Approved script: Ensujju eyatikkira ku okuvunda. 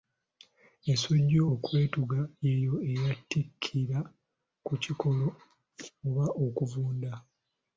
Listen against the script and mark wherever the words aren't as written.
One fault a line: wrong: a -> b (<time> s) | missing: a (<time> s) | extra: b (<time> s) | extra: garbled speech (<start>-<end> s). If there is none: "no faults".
extra: okwetuga y'eyo (1.5 s)
extra: kikolo oba (4.8 s)